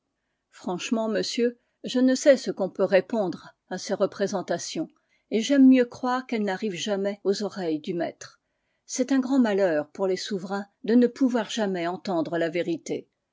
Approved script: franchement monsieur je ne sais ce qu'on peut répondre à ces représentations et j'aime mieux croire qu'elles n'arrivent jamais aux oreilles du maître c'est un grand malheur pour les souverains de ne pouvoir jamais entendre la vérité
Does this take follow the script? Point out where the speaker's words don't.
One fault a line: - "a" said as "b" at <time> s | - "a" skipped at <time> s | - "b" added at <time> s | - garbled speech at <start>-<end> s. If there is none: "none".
none